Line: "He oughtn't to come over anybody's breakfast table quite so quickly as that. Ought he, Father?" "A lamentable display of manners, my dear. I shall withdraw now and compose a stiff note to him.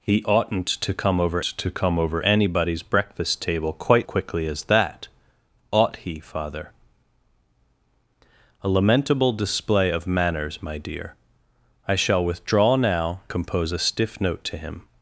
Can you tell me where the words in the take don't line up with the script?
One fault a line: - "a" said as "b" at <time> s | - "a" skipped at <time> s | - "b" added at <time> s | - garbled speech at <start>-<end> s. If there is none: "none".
- "to come over" added at 1.4 s
- "so" skipped at 4.1 s
- "and" skipped at 13.2 s